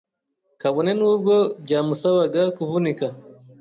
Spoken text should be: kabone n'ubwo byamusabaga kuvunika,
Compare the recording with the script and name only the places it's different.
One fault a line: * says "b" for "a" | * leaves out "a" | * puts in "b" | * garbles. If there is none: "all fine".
all fine